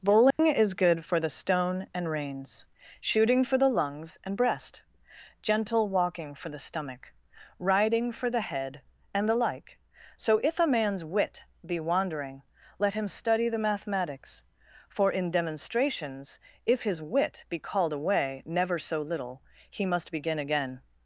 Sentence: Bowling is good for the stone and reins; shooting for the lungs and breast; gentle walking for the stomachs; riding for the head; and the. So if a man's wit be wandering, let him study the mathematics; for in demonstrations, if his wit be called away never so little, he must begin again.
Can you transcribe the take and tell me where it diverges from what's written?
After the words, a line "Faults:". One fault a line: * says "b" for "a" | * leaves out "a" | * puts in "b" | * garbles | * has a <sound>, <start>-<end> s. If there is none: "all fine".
Bowling is good for the stone and reins; shooting for the lungs and breast; gentle walking for the stomach; riding for the head; and the like. So if a man's wit be wandering, let him study the mathematics; for in demonstrations, if his wit be called away never so little, he must begin again.
Faults:
* has a dropout, 0.3-0.4 s
* says "stomach" for "stomachs"
* puts in "like"